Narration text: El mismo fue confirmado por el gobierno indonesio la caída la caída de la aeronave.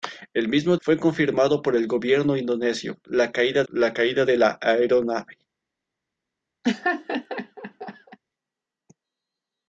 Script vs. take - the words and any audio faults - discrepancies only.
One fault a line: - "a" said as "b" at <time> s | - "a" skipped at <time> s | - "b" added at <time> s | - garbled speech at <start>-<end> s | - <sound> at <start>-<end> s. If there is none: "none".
- laugh at 6.6-8.2 s